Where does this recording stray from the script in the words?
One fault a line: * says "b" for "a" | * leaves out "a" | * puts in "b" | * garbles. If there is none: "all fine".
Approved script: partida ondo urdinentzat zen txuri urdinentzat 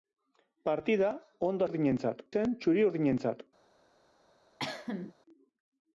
all fine